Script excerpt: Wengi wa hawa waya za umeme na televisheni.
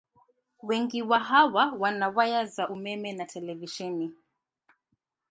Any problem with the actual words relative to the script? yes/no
yes